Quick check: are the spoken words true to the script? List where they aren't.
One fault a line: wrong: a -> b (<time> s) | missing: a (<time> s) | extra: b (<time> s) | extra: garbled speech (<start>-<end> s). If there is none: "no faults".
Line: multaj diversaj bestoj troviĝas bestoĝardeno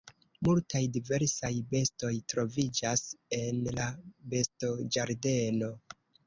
extra: en la (3.4 s)